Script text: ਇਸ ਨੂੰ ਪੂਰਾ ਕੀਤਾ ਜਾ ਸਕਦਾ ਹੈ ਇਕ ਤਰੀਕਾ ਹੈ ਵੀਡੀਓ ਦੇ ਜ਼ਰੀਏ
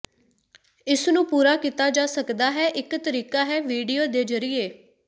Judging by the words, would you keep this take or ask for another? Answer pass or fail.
pass